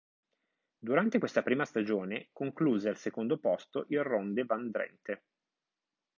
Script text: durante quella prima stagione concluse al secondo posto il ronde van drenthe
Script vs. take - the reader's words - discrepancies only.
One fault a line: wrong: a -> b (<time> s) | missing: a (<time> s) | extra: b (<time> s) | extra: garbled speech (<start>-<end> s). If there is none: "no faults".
wrong: quella -> questa (1.2 s)